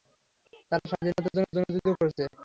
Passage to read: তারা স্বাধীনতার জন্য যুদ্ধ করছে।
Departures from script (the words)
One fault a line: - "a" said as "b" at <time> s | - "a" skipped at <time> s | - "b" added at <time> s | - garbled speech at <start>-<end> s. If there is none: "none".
- "জন্য" added at 1.5 s